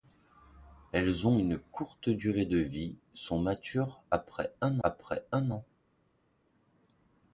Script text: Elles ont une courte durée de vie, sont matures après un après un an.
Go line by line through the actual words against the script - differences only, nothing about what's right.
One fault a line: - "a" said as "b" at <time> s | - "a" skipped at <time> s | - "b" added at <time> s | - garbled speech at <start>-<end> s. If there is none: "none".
none